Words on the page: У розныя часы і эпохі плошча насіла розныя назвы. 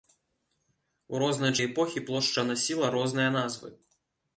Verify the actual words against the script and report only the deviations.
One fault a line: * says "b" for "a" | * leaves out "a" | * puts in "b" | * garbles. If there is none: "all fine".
* leaves out "часы"